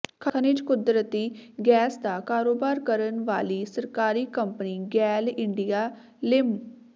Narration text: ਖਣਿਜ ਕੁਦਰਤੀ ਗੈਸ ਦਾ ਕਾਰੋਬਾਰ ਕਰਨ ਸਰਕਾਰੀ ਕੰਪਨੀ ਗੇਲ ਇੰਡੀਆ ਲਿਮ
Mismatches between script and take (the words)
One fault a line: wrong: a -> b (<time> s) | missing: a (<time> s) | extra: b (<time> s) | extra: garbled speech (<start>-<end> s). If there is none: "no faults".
extra: ਵਾਲੀ (3.2 s)